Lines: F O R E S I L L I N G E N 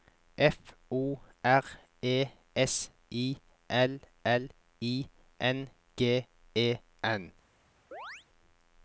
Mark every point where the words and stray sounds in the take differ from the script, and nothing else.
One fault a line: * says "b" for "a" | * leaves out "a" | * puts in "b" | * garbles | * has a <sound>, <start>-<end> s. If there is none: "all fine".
* has a chirp, 7.9-8.3 s